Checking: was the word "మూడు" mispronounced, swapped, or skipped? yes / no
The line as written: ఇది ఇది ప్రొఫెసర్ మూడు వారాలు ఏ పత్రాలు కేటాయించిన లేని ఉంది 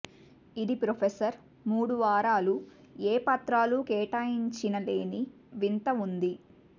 no